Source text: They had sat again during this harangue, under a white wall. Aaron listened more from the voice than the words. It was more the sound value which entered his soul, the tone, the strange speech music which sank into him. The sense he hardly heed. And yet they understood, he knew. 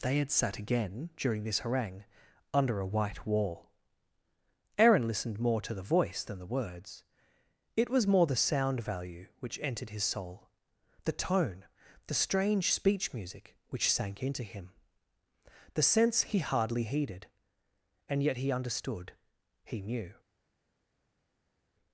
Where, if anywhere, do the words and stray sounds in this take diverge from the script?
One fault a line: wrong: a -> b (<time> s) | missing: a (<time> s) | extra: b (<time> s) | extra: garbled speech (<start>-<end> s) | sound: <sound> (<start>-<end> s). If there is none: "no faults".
wrong: from -> to (5.6 s)
wrong: heed -> heeded (16.8 s)
wrong: they -> he (18.4 s)